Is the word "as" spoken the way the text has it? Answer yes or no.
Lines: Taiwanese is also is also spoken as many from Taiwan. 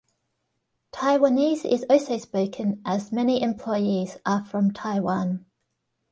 yes